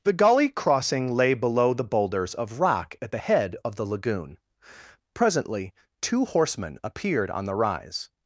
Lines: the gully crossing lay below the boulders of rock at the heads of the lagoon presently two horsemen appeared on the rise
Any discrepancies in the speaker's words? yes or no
yes